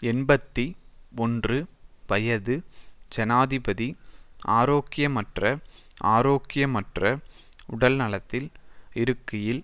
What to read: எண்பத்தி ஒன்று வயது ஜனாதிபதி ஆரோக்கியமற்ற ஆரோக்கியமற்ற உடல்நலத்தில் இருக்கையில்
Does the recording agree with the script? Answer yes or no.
yes